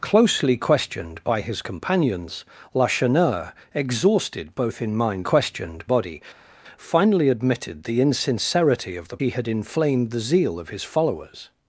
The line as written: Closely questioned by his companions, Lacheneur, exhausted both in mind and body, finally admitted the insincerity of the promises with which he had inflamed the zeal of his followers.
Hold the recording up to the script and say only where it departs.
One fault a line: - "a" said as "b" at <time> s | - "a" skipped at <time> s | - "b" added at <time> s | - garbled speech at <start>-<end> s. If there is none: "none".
- "and" said as "questioned" at 5.2 s
- "promises with which" skipped at 9.2 s